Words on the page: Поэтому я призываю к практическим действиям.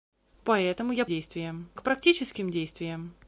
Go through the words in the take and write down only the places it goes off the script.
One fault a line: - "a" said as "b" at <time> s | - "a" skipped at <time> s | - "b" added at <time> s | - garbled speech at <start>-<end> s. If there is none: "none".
- "призываю" said as "действиям" at 1.0 s